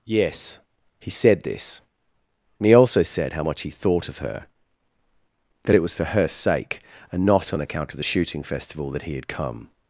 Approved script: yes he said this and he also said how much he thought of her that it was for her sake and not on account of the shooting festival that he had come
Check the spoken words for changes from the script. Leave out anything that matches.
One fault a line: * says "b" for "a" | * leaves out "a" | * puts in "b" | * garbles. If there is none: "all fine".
all fine